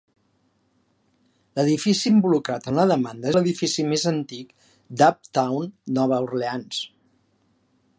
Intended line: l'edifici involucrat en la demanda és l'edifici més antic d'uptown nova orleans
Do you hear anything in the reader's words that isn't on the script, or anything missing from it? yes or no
yes